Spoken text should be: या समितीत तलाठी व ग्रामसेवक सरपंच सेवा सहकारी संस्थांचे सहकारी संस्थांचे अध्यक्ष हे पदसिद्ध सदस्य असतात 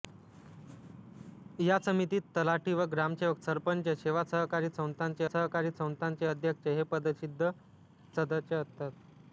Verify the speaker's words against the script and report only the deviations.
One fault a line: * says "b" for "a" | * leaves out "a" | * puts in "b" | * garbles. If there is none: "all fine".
all fine